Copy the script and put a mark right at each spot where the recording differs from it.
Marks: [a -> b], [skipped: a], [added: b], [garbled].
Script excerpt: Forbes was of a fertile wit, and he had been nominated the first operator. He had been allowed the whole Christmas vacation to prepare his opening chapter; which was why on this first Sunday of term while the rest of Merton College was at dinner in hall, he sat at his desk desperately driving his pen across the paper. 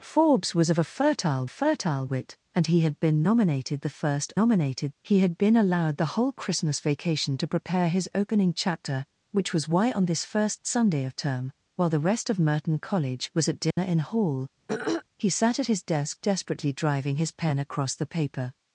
Forbes was of a fertile [added: fertile] wit, and he had been nominated the first [operator. -> nominated] He had been allowed the whole Christmas vacation to prepare his opening chapter; which was why on this first Sunday of term while the rest of Merton College was at dinner in hall, he sat at his desk desperately driving his pen across the paper.